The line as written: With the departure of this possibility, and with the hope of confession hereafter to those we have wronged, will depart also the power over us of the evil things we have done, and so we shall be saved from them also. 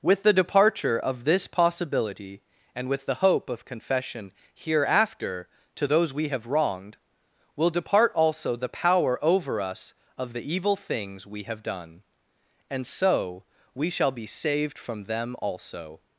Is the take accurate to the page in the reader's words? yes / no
yes